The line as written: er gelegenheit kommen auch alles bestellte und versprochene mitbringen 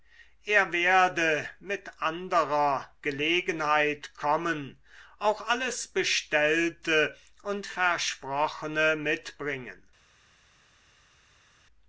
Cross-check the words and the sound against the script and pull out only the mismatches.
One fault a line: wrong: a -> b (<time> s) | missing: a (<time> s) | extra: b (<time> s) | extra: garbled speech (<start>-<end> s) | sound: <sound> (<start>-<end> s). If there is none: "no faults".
extra: werde mit anderer (0.7 s)